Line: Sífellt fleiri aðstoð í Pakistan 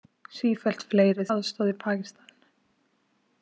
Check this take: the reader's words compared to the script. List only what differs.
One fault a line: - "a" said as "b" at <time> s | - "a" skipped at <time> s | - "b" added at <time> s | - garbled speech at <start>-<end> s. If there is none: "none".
none